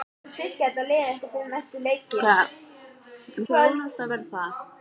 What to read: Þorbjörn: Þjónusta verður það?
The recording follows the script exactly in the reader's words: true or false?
true